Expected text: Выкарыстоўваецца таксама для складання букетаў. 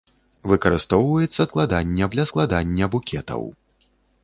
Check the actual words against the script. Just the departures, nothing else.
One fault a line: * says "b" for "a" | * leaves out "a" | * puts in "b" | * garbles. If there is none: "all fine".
* says "складання" for "таксама"